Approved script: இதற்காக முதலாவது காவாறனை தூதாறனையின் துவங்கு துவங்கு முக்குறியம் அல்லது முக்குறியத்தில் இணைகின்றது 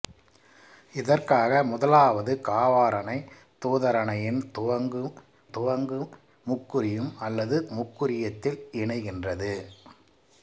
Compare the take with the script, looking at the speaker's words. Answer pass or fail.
pass